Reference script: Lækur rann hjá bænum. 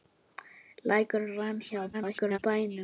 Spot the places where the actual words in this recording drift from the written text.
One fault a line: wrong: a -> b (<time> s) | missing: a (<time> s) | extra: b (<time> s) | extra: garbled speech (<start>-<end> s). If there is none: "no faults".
extra: garbled speech (1.9-2.4 s)